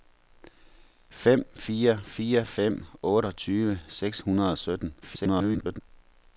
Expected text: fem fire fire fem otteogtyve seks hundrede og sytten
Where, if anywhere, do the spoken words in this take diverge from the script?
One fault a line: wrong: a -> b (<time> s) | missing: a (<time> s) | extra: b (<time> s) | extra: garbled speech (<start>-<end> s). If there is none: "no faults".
extra: garbled speech (5.0-5.8 s)